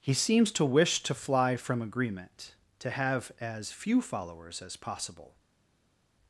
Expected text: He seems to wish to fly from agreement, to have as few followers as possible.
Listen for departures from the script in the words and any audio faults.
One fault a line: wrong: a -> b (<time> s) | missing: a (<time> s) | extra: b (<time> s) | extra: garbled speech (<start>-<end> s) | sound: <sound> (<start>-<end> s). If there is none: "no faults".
no faults